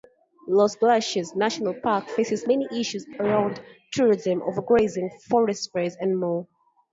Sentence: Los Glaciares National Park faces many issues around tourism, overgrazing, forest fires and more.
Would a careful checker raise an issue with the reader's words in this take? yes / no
no